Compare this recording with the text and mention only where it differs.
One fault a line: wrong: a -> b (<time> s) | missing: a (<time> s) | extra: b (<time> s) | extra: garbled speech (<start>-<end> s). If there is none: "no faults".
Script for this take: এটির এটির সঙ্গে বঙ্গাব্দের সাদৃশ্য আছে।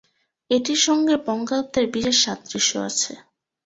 missing: এটির (0.8 s)
extra: বিশেষ (1.9 s)